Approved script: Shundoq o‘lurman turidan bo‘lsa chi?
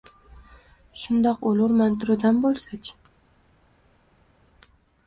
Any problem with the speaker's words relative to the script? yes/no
no